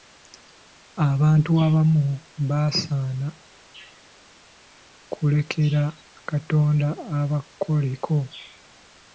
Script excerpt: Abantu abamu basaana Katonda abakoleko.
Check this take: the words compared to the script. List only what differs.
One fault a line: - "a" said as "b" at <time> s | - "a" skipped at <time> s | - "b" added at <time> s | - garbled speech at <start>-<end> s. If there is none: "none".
- "kulekera" added at 5.1 s